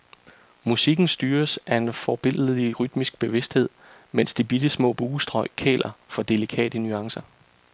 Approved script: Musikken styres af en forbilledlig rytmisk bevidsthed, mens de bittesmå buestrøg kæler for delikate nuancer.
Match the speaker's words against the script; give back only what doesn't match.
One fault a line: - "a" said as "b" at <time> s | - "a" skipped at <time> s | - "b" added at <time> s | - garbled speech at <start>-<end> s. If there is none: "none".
none